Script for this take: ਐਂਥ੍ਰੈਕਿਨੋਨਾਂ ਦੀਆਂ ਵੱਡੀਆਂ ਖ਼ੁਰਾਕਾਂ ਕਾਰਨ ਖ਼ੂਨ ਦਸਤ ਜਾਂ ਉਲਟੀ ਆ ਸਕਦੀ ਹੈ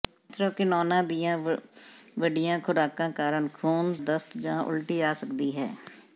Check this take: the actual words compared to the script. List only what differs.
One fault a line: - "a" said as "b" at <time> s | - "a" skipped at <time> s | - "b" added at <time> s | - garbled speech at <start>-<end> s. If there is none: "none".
none